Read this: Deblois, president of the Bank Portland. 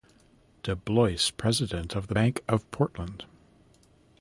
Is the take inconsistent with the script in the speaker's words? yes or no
yes